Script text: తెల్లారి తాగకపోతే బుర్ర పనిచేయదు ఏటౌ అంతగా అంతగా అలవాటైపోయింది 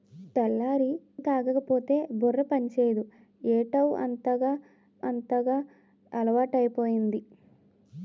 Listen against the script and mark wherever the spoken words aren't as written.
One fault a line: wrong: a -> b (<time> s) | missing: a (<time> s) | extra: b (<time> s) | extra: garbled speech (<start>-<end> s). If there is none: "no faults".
no faults